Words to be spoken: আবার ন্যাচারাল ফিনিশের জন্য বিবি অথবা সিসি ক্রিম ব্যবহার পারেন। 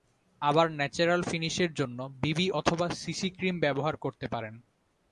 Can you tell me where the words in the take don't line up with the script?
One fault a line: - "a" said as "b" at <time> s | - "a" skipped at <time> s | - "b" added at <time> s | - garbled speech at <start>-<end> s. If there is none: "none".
- "করতে" added at 4.0 s